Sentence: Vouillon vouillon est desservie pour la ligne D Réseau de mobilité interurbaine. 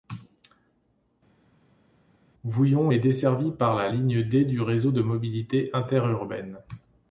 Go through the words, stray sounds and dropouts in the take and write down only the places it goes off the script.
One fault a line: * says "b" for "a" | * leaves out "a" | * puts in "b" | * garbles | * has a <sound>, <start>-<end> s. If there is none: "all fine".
* leaves out "vouillon"
* says "par" for "pour"
* puts in "du"